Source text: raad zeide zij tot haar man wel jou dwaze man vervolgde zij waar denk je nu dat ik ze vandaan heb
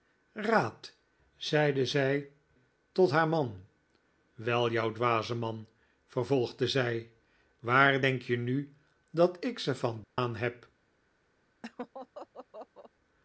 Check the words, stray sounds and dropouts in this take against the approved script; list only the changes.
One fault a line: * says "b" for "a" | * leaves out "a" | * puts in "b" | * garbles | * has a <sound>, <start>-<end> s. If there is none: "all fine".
* has a dropout, 10.0-10.2 s
* has a laugh, 11.6-12.9 s